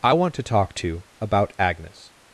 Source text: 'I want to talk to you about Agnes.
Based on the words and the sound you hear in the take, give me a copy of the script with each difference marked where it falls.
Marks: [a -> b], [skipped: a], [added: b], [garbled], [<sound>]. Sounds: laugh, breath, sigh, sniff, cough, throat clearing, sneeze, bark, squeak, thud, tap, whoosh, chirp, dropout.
'I want to talk to [skipped: you] about Agnes.